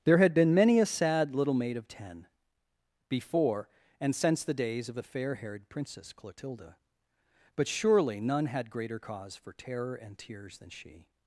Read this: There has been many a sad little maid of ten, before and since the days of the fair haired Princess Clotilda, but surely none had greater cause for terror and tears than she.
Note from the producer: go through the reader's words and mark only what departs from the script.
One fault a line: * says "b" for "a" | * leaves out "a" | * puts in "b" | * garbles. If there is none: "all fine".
* says "had" for "has"